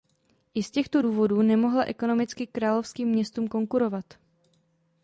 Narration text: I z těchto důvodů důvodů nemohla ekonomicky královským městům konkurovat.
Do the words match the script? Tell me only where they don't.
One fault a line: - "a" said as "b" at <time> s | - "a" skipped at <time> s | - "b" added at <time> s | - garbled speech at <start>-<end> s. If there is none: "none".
- "důvodů" skipped at 1.4 s